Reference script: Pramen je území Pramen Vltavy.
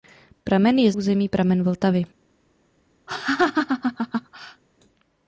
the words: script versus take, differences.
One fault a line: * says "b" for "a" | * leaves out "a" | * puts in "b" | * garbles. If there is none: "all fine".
all fine